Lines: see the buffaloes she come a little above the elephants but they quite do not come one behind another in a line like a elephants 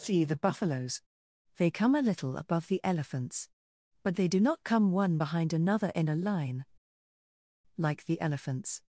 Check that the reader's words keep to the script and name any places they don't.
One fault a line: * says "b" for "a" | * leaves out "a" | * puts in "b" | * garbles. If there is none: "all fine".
* says "they" for "she"
* leaves out "quite"
* says "the" for "a"